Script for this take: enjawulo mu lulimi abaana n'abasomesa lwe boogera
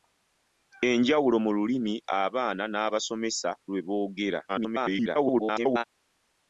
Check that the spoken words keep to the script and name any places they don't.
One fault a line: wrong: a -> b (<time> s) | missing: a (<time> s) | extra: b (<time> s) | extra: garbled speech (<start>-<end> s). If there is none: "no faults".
extra: garbled speech (4.5-5.8 s)